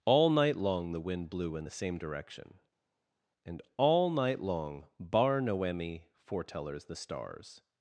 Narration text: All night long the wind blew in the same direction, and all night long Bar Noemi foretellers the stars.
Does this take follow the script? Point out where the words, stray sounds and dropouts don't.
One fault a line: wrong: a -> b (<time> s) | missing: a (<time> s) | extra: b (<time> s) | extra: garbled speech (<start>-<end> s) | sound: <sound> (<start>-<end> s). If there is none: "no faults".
no faults